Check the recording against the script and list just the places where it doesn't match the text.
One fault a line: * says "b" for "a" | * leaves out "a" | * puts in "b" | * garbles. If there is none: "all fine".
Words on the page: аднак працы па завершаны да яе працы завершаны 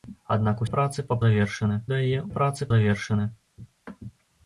all fine